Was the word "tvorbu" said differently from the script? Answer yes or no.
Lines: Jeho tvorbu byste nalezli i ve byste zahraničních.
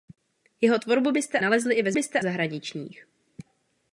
no